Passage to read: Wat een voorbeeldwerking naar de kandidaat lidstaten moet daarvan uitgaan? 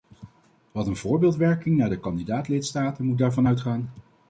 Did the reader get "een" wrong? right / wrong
right